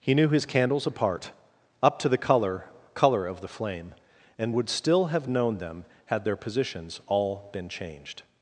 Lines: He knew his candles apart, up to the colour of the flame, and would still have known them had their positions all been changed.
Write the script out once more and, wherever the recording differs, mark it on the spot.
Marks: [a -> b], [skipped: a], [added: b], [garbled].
He knew his candles apart, up to the colour [added: colour] of the flame, and would still have known them had their positions all been changed.